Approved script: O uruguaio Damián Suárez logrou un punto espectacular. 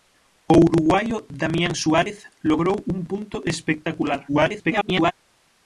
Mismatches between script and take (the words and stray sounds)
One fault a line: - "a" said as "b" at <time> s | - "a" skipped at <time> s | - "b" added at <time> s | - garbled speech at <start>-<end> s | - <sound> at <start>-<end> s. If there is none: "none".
- garbled speech at 4.3-5.1 s